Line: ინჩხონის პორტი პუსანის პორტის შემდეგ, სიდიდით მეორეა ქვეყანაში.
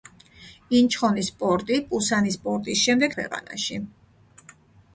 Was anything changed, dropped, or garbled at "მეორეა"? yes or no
yes